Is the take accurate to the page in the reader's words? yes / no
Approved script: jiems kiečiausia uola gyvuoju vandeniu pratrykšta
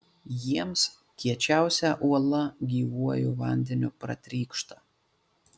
yes